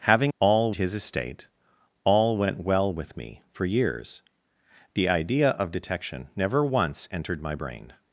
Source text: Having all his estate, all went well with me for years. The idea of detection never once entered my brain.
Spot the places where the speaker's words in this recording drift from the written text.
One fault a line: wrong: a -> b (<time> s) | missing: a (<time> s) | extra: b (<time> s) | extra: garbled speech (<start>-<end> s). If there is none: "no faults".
no faults